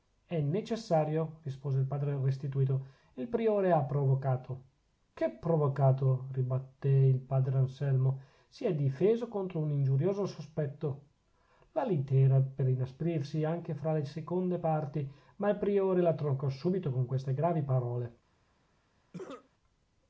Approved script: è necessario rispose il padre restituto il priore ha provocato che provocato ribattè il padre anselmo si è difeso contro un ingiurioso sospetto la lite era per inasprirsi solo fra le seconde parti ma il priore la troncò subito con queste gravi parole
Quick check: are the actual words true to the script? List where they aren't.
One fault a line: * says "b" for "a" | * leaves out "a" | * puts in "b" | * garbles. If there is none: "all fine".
* says "anche" for "solo"